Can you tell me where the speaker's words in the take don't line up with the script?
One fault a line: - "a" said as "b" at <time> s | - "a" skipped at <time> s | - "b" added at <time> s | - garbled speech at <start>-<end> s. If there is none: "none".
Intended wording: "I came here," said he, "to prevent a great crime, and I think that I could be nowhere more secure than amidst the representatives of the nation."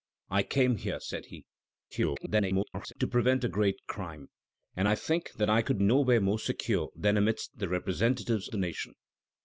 - garbled speech at 1.9-2.9 s
- "be" skipped at 5.8 s
- "of" skipped at 8.5 s